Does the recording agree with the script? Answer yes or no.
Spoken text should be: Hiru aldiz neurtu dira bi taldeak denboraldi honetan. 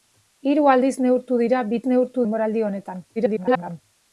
no